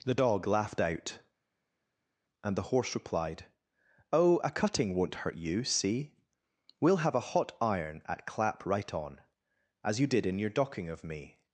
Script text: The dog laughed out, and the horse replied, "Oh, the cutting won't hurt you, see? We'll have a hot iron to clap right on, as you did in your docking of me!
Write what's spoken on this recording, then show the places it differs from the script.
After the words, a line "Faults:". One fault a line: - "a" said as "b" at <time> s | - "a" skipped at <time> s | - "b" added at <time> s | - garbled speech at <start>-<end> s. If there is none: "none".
The dog laughed out, and the horse replied, "Oh, a cutting won't hurt you, see? We'll have a hot iron at clap right on, as you did in your docking of me!
Faults:
- "the" said as "a" at 4.4 s
- "to" said as "at" at 8.0 s